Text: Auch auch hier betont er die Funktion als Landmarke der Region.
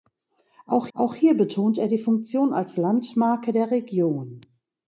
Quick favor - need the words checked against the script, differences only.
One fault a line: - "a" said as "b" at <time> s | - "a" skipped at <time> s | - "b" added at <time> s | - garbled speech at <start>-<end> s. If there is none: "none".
none